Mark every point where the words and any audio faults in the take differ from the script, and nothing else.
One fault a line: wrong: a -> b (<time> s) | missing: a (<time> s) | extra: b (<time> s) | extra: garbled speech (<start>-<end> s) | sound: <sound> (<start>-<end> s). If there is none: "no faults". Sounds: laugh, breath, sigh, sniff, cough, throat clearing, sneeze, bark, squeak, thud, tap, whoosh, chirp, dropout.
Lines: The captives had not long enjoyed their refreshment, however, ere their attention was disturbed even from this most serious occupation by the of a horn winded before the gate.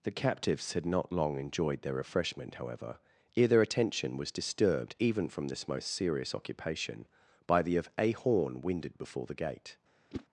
sound: whoosh (10.1-10.3 s)